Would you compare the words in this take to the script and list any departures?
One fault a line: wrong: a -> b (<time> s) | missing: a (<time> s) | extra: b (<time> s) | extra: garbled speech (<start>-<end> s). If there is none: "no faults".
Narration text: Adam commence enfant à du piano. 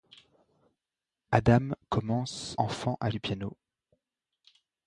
no faults